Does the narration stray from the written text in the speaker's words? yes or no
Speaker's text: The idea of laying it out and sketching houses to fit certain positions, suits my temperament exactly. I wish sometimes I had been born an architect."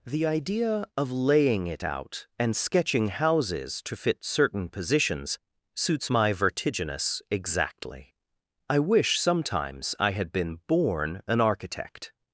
yes